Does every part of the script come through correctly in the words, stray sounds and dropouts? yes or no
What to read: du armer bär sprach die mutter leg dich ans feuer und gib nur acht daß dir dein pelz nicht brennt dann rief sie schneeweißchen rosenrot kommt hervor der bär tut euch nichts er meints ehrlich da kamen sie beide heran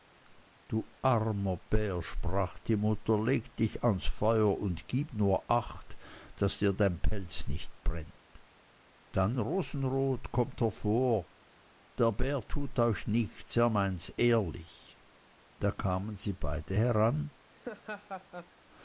no